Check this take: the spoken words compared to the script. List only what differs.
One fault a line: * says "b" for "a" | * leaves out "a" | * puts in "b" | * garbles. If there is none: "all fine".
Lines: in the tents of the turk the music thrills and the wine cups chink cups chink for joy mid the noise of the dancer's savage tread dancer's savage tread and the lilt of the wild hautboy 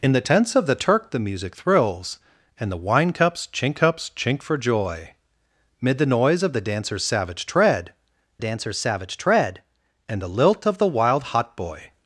all fine